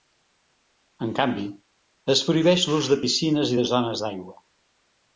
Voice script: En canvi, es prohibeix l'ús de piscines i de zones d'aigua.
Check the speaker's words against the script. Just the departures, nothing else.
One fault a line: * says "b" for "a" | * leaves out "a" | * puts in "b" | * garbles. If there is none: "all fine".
all fine